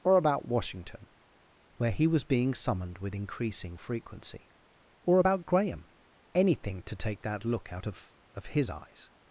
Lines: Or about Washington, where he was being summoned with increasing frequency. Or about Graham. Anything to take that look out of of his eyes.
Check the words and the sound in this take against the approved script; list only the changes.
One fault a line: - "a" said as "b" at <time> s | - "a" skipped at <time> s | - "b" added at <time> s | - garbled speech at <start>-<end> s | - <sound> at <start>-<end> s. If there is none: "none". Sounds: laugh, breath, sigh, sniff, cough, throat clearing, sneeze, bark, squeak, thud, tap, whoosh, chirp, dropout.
none